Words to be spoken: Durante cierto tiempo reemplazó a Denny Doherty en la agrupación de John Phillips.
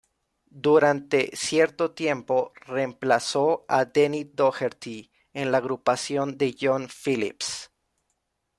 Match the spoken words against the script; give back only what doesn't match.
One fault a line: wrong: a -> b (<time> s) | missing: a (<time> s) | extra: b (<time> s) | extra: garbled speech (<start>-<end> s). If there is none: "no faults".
no faults